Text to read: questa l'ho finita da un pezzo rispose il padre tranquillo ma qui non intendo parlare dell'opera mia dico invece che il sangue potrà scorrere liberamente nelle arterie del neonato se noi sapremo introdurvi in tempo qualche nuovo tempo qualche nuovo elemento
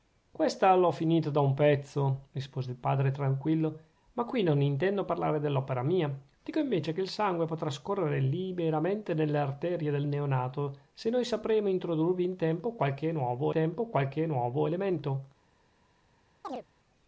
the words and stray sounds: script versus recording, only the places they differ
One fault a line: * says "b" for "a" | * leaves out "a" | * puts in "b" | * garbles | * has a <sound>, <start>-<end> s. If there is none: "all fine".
* has a chirp, 16.4-16.7 s